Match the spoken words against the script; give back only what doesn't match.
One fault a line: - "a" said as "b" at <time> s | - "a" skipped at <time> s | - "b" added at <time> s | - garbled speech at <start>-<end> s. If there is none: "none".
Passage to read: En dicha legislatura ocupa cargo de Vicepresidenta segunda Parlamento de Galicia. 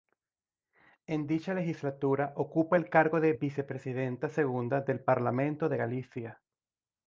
- "el" added at 2.7 s
- "del" added at 4.8 s